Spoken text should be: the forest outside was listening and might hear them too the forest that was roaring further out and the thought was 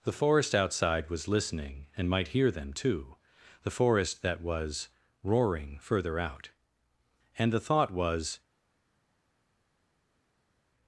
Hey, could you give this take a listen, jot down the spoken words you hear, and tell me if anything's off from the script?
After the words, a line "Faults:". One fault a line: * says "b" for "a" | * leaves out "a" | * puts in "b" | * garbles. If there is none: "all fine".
the forest outside was listening and might hear them too the forest that was roaring further out and the thought was
Faults:
all fine